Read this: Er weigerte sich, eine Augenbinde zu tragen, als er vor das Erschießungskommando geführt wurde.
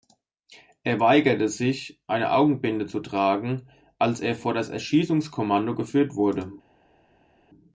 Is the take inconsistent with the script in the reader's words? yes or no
no